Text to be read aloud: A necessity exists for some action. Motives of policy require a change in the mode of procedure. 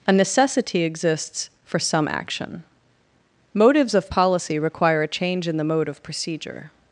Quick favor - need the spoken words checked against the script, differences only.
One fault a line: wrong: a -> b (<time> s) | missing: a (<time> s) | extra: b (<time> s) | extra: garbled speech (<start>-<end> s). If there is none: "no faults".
no faults